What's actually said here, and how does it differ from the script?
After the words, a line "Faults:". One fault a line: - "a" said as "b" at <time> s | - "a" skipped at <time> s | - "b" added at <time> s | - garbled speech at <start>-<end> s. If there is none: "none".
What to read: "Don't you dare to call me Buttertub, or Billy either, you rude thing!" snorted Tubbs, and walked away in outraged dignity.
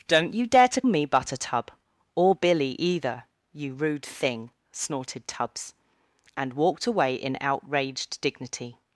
"Don't you dare to me Buttertub, or Billy either, you rude thing!" snorted Tubbs, and walked away in outraged dignity.
Faults:
- "call" skipped at 0.8 s